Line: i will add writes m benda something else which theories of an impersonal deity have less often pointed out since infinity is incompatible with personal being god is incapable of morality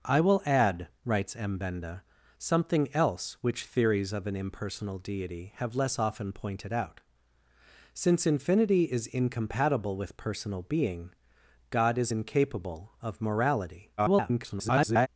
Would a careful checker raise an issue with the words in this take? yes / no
yes